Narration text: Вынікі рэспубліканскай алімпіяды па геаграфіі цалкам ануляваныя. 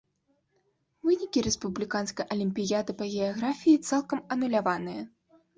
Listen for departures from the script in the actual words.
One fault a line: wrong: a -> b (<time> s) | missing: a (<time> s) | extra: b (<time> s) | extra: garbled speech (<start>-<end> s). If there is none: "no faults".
no faults